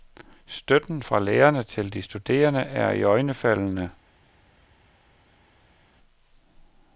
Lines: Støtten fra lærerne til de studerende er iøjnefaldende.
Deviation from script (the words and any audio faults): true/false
false